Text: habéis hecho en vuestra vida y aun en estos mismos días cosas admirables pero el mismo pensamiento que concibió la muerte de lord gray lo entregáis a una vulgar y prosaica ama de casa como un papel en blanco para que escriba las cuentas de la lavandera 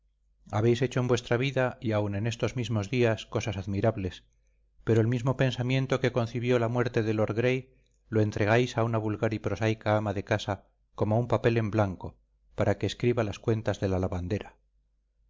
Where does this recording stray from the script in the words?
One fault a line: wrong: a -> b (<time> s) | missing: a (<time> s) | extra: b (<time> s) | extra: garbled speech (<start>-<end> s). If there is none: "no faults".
no faults